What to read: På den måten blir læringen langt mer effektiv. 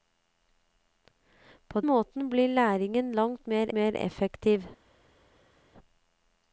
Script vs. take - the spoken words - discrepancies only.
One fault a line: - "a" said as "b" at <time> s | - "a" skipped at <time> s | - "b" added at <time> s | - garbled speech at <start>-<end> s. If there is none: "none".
- "den" skipped at 1.8 s
- "mer" added at 3.7 s